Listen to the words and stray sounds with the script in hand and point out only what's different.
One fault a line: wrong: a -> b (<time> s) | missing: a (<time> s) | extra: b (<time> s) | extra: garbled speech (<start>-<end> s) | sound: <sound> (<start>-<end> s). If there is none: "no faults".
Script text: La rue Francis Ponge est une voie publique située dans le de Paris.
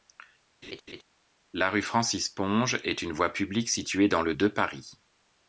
sound: laugh (0.6-1.0 s)